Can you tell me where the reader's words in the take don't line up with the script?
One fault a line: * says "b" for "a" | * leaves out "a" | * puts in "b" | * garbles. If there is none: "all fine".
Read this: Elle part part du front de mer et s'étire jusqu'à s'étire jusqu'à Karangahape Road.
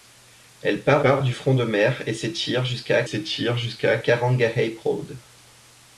all fine